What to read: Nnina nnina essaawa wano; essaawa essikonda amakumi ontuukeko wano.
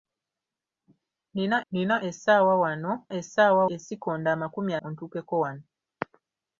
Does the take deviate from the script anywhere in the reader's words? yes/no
no